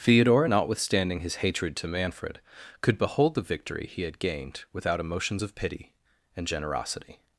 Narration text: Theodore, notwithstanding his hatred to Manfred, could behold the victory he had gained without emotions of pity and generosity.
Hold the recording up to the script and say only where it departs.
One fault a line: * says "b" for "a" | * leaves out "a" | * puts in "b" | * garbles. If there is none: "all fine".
all fine